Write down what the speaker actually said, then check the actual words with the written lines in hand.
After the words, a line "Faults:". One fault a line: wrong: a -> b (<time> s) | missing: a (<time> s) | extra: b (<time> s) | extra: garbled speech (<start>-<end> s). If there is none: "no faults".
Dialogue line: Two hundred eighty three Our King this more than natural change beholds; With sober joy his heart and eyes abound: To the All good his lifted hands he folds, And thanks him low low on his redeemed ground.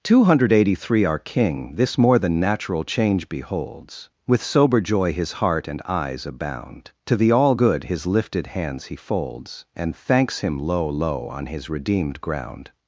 Two hundred eighty three Our King this more than natural change beholds; With sober joy his heart and eyes abound: To the All good his lifted hands he folds, And thanks him low low on his redeemed ground.
Faults:
no faults